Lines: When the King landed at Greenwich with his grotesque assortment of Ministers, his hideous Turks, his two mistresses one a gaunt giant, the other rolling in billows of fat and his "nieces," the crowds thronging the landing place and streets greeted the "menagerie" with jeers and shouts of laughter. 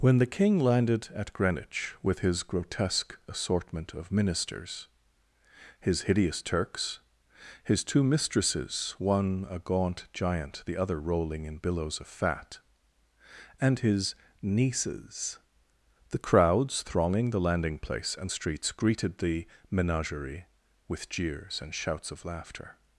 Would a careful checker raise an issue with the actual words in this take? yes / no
no